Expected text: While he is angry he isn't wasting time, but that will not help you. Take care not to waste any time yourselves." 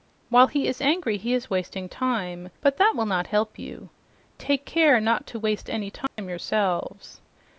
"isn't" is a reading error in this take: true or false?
true